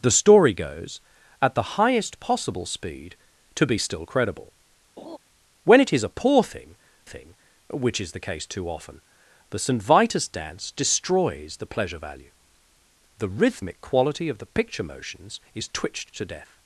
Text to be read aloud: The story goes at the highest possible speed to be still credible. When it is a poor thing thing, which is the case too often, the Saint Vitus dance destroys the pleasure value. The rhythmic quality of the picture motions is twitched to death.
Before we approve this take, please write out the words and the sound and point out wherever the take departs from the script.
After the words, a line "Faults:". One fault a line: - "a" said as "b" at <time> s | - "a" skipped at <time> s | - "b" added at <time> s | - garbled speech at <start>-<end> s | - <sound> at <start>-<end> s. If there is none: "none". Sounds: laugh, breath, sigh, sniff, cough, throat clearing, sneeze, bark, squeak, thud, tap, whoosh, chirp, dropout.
The story goes at the highest possible speed to be still credible. When it is a poor thing thing, which is the case too often, the Saint Vitus dance destroys the pleasure value. The rhythmic quality of the picture motions is twitched to death.
Faults:
- laugh at 5.0-5.2 s